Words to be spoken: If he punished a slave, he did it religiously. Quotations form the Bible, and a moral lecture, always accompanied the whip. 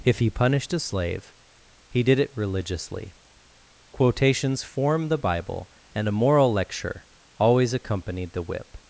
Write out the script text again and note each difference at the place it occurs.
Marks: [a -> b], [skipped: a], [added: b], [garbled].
If he punished a slave, he did it religiously. Quotations form the Bible, and a moral lecture, always accompanied the whip.